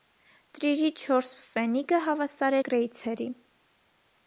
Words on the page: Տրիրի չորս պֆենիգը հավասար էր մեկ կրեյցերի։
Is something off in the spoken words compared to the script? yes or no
yes